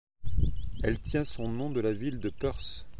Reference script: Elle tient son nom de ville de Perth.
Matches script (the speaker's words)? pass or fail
fail